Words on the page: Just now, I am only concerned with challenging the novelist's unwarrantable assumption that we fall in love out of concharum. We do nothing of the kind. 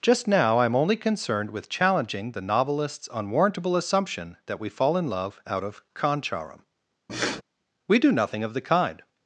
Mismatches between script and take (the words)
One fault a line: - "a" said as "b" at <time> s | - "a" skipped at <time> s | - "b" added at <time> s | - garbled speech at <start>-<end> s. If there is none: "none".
none